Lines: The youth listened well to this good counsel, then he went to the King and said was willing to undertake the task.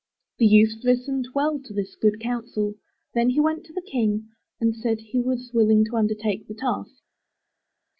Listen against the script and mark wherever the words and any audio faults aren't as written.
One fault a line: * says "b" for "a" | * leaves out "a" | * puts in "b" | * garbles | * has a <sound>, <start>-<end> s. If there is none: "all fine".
* puts in "he"